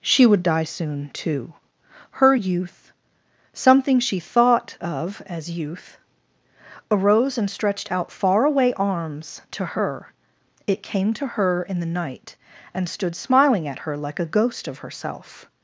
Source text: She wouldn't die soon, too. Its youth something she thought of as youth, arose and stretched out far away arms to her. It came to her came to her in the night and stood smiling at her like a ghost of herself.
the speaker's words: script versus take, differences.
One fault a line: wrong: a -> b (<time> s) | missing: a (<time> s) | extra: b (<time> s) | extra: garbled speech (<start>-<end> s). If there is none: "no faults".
wrong: wouldn't -> would (0.2 s)
wrong: Its -> Her (2.1 s)
missing: came to her (11.6 s)